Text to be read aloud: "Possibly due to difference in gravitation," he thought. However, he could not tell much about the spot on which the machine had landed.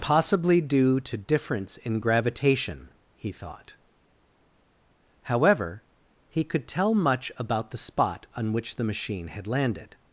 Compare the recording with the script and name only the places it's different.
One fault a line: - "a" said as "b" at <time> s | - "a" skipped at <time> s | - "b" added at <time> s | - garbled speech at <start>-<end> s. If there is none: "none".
- "not" skipped at 6.7 s